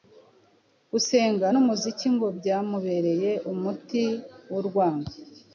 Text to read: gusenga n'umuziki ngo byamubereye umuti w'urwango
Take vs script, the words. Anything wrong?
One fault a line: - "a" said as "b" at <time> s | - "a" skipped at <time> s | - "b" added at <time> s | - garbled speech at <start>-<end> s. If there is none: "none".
none